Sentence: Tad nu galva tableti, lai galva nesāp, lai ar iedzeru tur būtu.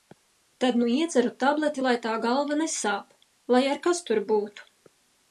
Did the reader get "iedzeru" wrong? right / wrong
wrong